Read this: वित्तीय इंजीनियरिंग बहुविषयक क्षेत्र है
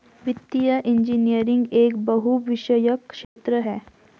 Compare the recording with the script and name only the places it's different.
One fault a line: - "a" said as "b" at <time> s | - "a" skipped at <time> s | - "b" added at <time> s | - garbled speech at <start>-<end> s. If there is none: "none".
- "एक" added at 1.7 s